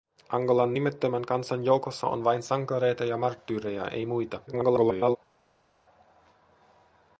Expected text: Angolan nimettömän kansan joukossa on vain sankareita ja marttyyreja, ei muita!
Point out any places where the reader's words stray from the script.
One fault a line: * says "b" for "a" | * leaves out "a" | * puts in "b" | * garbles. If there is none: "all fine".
* garbles